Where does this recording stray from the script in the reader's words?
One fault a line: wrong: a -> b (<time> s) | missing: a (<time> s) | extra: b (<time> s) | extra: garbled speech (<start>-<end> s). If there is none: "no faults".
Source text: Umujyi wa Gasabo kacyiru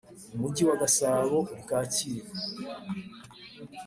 extra: uri (1.5 s)